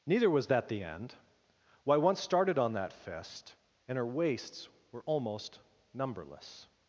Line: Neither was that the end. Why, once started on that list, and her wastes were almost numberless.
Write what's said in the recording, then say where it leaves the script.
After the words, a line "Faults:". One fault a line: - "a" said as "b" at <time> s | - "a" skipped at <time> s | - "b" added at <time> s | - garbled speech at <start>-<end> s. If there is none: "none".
Neither was that the end. Why, once started on that fist, and her wastes were almost numberless.
Faults:
- "list" said as "fist" at 2.9 s